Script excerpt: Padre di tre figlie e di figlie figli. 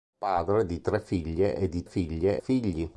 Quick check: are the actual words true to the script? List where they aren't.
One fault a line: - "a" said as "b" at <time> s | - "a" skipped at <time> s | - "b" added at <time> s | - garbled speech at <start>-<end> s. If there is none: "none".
none